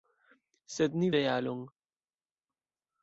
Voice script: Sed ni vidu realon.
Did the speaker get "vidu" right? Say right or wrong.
wrong